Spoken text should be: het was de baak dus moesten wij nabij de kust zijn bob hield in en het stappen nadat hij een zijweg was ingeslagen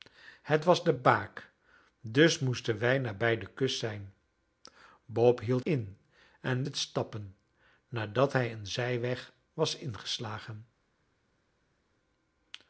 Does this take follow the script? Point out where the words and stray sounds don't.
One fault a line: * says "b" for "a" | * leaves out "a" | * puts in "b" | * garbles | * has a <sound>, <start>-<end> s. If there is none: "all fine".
all fine